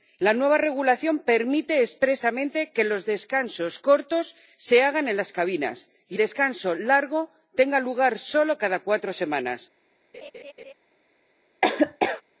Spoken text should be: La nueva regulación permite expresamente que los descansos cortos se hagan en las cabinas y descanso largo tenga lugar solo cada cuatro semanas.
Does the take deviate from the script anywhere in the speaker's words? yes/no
no